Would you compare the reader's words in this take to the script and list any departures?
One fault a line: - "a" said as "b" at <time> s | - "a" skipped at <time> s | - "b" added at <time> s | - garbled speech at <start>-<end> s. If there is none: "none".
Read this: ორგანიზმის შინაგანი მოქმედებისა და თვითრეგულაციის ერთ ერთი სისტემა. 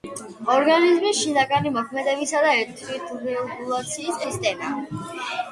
- "ერთ ერთი" skipped at 4.2 s